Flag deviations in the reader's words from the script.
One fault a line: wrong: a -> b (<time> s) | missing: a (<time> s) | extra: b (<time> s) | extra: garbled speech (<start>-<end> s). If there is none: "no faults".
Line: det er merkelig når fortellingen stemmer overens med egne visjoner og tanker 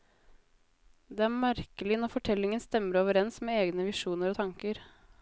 no faults